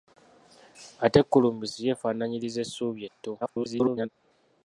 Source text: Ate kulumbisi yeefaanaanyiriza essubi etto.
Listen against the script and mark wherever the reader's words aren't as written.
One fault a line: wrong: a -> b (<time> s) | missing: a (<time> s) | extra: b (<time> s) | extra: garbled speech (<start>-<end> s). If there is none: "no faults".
extra: garbled speech (3.4-4.1 s)